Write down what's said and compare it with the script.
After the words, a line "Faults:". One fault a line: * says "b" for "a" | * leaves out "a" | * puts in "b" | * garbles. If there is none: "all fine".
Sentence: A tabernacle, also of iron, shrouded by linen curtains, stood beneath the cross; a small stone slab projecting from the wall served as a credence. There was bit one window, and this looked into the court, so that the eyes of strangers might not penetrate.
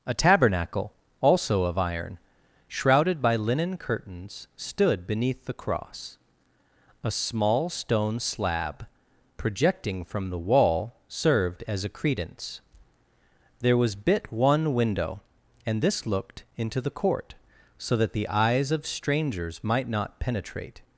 A tabernacle, also of iron, shrouded by linen curtains, stood beneath the cross; a small stone slab projecting from the wall served as a credence. There was bit one window, and this looked into the court, so that the eyes of strangers might not penetrate.
Faults:
all fine